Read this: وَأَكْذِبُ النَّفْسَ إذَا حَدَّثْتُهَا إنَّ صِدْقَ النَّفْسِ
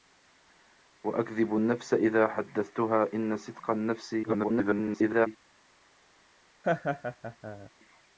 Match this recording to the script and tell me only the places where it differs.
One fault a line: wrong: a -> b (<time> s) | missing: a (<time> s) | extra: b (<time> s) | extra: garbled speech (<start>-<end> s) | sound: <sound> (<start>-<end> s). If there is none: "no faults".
extra: garbled speech (4.2-5.3 s)
sound: laugh (6.6-7.7 s)